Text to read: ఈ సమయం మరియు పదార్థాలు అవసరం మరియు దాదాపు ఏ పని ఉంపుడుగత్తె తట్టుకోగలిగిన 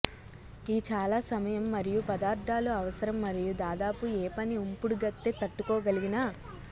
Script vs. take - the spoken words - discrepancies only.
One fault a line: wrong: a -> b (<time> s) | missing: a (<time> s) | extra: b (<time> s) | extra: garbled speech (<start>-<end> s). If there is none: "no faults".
extra: చాలా (0.9 s)